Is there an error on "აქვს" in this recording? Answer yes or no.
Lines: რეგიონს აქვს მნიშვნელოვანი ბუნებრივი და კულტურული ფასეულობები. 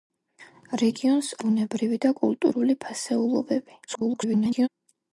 yes